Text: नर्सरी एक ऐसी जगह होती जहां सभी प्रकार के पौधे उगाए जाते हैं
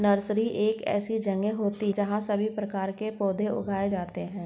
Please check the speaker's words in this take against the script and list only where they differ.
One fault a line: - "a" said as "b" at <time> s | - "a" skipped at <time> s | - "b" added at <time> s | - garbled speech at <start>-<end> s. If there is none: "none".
none